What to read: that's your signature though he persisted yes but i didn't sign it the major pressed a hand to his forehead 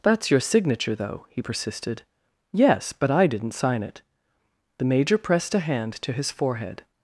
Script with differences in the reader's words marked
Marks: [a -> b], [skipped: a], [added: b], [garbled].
that's your signature though he persisted yes but i didn't sign it the major pressed a hand to his forehead